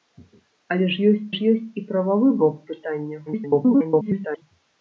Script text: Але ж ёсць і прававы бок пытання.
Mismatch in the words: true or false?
true